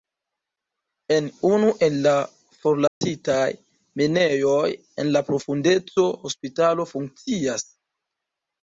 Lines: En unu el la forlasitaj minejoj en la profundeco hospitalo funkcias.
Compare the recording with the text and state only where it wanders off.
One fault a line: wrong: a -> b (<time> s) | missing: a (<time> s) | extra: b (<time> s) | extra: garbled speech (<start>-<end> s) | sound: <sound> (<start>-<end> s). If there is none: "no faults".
sound: dropout (2.9-3.0 s)